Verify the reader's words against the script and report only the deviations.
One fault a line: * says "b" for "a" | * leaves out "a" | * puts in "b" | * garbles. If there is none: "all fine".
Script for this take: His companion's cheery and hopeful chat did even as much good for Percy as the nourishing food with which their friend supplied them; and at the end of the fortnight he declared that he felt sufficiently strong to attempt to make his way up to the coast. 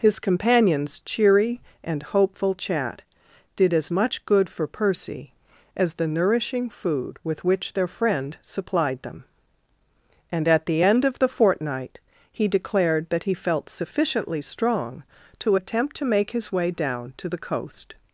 * leaves out "even"
* says "down" for "up"